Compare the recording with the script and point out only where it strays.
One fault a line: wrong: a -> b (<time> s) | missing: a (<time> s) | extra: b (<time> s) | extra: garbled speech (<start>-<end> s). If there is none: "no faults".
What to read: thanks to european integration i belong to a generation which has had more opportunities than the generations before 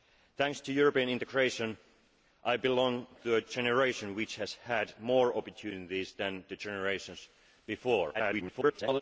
extra: garbled speech (8.1-9.0 s)